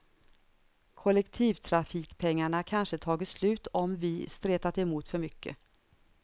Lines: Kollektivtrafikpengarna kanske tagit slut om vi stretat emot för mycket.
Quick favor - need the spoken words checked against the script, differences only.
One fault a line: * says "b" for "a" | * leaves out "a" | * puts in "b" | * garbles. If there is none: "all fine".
all fine